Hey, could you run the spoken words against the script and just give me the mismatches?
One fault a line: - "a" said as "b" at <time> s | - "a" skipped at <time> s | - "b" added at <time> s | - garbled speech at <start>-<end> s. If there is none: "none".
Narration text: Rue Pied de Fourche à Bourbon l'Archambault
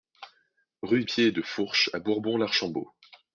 none